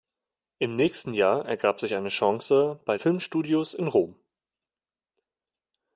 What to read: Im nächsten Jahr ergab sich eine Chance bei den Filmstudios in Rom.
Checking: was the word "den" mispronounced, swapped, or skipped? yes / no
yes